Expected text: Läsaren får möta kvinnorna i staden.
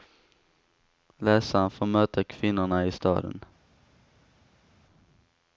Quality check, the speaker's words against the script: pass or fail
pass